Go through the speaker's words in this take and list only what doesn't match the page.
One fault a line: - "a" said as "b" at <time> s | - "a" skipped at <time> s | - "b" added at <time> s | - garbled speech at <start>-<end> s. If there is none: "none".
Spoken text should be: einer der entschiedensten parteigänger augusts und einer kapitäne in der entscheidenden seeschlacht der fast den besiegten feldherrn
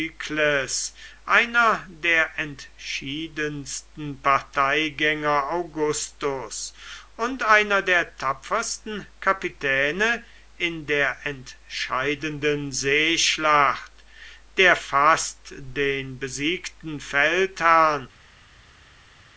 - "der tapfersten" added at 7.8 s